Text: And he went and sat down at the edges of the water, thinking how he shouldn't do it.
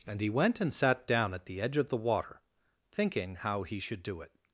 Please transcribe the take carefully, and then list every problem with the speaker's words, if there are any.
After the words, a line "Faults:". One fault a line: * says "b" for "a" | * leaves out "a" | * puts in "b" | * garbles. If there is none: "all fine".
And he went and sat down at the edge of the water, thinking how he should do it.
Faults:
* says "edge" for "edges"
* says "should" for "shouldn't"